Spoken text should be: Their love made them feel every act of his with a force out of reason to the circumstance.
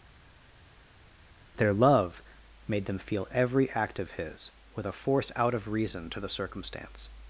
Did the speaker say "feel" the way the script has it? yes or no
yes